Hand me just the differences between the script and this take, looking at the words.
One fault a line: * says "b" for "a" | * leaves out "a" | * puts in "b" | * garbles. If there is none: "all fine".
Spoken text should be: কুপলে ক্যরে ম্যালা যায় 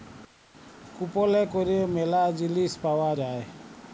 * puts in "জিলিস পাউয়া"